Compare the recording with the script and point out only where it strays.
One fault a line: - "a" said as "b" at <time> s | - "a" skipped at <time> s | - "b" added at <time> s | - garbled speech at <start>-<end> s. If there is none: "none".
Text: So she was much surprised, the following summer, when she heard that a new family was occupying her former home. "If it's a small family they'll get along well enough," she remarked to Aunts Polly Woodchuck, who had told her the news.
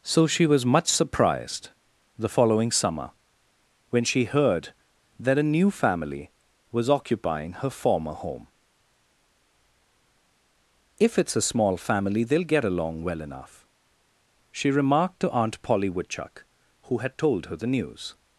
- "Aunts" said as "Aunt" at 15.3 s